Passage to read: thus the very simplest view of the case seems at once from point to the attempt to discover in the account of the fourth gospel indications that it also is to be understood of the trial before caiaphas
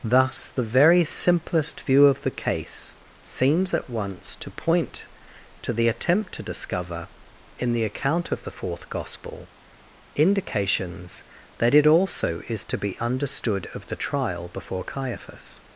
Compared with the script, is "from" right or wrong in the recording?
wrong